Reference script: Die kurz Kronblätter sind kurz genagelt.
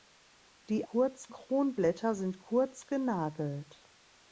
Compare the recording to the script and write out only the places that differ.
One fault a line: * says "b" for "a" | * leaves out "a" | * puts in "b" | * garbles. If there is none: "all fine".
all fine